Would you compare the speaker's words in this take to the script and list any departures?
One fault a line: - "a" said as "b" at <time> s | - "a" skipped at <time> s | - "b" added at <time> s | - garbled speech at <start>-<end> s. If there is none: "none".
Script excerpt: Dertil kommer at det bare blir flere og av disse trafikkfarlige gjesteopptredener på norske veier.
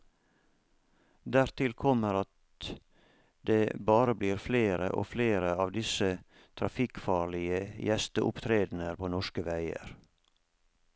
- "flere" added at 5.1 s